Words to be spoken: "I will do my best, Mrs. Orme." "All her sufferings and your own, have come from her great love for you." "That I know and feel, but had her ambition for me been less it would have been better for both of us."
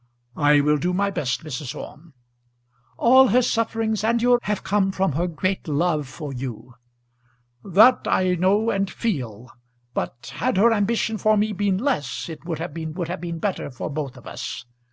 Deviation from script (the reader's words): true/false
true